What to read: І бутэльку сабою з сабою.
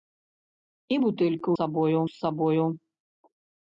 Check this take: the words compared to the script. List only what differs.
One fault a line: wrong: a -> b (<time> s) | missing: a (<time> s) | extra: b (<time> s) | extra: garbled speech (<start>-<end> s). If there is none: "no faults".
no faults